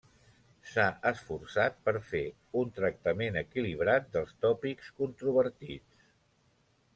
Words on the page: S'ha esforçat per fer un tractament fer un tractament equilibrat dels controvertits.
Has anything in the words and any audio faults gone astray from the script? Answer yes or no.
yes